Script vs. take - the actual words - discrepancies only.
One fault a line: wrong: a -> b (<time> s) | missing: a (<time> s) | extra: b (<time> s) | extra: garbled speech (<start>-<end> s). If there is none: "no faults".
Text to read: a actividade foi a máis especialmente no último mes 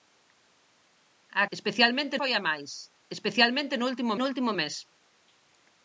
wrong: actividade -> especialmente (1.6 s)
extra: no último (4.2 s)